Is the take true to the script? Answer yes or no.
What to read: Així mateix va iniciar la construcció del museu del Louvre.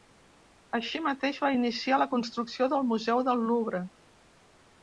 yes